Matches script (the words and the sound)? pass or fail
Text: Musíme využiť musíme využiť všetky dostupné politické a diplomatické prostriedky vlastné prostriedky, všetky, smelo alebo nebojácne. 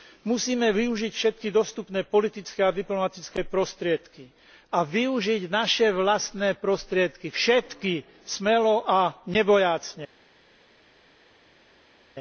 fail